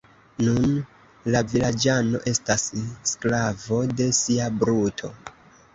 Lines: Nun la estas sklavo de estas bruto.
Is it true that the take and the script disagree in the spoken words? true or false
true